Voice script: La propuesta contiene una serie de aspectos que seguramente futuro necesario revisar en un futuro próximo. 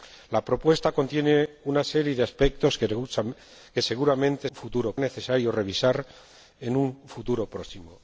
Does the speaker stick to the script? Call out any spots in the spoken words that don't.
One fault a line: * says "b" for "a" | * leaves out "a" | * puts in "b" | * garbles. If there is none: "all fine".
all fine